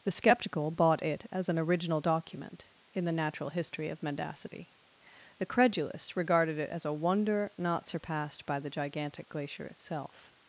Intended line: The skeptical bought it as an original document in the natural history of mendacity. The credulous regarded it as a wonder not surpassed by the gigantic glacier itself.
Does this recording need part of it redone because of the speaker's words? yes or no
no